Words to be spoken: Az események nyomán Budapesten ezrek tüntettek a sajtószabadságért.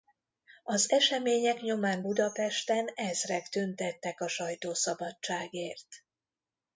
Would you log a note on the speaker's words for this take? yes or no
no